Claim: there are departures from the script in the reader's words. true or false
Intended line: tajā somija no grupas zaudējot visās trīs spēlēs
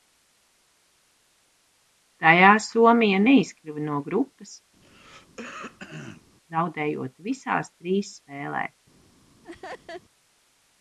true